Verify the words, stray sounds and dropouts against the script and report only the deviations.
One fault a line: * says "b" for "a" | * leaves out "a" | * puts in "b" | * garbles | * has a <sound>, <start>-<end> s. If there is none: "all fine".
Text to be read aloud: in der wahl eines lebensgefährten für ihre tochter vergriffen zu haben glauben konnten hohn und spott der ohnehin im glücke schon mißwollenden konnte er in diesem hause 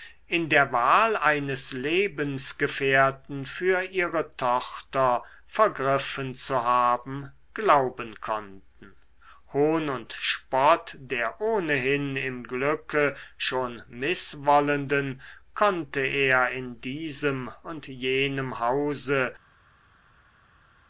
* puts in "und jenem"